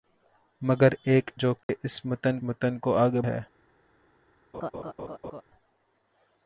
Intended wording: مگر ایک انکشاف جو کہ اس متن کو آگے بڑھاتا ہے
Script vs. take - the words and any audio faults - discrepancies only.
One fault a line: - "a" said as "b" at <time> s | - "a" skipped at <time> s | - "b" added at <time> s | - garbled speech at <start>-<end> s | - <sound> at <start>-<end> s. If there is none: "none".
- "انکشاف" skipped at 1.3 s
- dropout at 1.6-1.7 s
- "متن" added at 2.4 s
- "بڑھاتا" skipped at 3.2 s
- laugh at 4.5-5.4 s